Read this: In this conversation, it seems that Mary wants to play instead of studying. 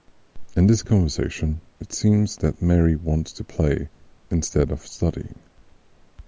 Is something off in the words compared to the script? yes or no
no